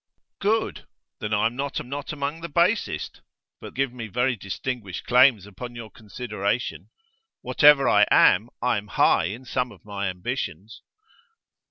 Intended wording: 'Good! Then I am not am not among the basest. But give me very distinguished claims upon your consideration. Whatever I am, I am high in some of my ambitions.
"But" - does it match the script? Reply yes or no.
yes